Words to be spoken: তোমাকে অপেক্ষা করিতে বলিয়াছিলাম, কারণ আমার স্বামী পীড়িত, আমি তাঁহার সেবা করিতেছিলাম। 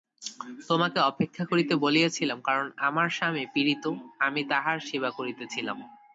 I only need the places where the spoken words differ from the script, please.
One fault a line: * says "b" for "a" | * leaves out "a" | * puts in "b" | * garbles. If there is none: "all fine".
all fine